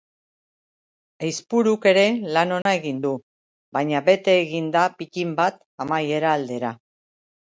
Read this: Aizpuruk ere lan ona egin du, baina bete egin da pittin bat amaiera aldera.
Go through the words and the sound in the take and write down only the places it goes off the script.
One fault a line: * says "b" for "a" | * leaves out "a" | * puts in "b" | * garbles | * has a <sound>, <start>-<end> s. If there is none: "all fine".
* has a dropout, 2.6-2.7 s